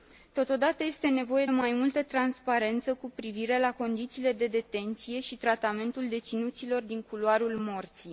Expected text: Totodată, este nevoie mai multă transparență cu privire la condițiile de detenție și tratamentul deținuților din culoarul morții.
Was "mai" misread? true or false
false